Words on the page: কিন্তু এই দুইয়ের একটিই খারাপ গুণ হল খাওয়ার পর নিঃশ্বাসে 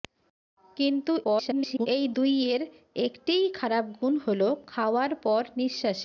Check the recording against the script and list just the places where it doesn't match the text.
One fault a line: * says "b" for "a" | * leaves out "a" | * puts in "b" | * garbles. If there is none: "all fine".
* garbles